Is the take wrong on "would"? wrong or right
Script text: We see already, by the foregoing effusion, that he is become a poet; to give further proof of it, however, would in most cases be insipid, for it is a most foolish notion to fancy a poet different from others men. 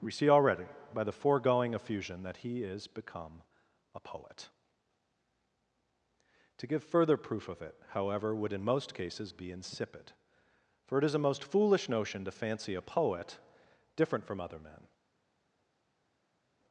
right